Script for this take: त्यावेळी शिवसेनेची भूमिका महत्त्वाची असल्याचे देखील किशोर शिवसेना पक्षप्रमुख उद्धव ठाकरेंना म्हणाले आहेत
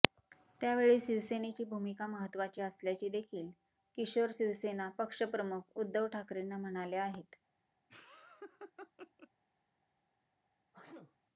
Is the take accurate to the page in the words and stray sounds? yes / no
no